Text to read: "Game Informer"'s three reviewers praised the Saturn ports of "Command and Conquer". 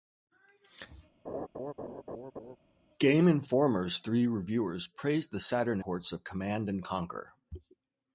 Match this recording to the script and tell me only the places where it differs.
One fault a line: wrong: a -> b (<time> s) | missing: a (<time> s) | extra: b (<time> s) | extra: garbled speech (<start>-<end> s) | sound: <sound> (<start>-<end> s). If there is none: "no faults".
sound: laugh (1.2-2.6 s)